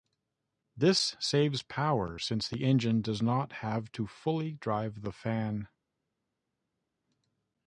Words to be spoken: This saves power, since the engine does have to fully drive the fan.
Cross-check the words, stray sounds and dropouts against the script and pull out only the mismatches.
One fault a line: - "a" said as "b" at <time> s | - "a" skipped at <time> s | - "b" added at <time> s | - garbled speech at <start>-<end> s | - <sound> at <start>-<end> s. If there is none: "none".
- "not" added at 3.2 s